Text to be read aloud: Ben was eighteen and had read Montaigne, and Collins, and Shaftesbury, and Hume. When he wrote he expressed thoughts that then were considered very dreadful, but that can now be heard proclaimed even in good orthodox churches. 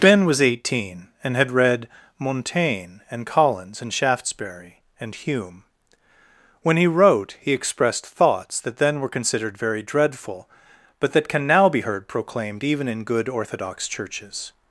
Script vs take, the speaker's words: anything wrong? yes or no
no